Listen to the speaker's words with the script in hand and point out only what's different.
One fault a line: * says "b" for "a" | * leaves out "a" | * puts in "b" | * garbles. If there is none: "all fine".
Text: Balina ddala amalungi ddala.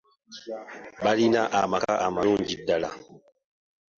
* says "amaka" for "ddala"